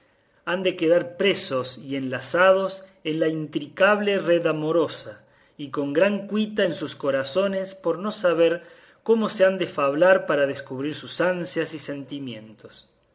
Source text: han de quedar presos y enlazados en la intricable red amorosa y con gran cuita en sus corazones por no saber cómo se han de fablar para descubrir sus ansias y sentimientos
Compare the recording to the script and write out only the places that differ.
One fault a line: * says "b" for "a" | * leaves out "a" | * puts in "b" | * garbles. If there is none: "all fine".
all fine